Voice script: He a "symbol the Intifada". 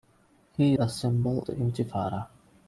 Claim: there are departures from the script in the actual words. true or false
false